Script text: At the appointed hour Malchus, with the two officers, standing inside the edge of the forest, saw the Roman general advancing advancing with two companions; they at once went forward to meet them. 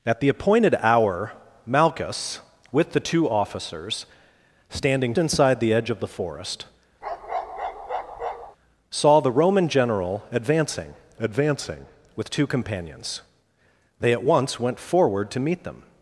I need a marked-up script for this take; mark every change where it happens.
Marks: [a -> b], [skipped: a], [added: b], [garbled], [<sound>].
At the appointed hour Malchus, with the two officers, standing inside the edge of the forest, [bark] saw the Roman general advancing advancing with two companions; they at once went forward to meet them.